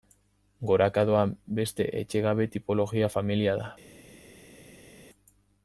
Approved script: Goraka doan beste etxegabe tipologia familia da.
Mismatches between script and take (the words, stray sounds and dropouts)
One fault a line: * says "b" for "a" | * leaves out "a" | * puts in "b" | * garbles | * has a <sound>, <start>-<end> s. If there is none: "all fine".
all fine